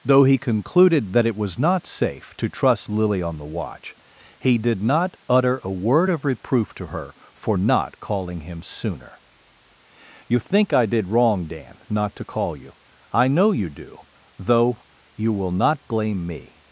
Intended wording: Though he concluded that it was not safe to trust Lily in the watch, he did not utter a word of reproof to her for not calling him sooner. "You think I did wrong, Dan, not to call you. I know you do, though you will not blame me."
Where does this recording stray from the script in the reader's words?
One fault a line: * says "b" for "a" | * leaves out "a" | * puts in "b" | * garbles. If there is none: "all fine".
* says "on" for "in"